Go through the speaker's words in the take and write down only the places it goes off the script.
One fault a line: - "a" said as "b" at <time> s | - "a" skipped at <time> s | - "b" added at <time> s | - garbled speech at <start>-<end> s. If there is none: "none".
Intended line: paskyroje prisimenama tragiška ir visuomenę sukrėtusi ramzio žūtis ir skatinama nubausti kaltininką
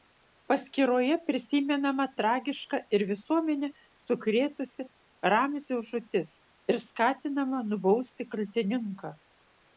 none